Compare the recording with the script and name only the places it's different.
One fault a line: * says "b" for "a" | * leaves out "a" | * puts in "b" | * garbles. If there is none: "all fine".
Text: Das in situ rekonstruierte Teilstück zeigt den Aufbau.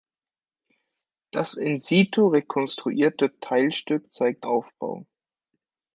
* leaves out "den"